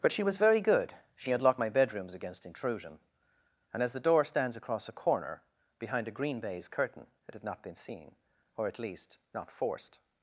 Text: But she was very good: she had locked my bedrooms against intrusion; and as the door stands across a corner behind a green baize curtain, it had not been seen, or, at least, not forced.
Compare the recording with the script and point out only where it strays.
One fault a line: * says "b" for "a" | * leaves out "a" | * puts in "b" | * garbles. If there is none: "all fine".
all fine